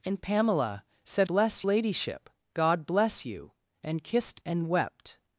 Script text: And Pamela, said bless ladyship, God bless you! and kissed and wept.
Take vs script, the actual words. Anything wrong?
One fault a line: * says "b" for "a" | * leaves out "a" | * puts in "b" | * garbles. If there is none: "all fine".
all fine